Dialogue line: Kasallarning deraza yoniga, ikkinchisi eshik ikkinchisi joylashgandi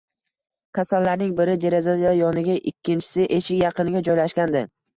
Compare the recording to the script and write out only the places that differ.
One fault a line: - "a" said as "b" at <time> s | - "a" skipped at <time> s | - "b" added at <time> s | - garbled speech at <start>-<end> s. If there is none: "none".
- "biri" added at 1.4 s
- "ikkinchisi" said as "yaqiniga" at 3.7 s